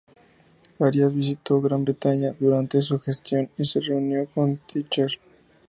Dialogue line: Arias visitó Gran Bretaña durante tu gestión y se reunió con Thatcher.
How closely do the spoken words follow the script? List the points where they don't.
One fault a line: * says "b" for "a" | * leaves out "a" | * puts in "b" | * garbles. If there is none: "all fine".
* says "su" for "tu"